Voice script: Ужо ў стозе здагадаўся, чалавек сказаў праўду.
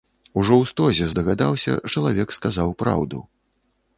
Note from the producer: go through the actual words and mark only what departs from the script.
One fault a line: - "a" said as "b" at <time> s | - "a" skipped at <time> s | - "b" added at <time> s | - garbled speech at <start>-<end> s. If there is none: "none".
none